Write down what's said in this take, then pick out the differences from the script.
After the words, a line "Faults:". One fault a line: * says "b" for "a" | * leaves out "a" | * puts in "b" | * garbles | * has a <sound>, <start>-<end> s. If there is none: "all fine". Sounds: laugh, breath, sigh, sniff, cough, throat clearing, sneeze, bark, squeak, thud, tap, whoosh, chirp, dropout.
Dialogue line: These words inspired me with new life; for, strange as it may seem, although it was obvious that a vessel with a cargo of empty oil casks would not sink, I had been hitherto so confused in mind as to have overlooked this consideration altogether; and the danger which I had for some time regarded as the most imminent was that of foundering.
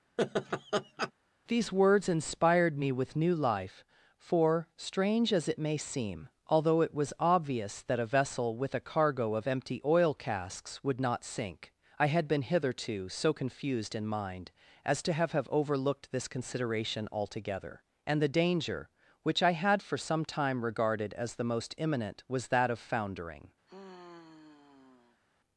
These words inspired me with new life; for, strange as it may seem, although it was obvious that a vessel with a cargo of empty oil casks would not sink, I had been hitherto so confused in mind as to have have overlooked this consideration altogether; and the danger which I had for some time regarded as the most imminent was that of foundering.
Faults:
* has a laugh, 0.2-1.1 s
* puts in "have"
* has a sigh, 23.7-25.2 s